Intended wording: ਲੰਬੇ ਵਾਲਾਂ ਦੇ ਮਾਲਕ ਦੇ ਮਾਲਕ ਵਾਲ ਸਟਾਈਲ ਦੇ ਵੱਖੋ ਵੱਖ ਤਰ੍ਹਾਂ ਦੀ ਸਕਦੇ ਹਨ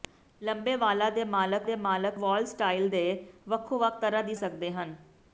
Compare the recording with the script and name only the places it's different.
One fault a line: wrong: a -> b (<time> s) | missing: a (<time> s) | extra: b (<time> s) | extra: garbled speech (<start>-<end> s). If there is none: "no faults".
no faults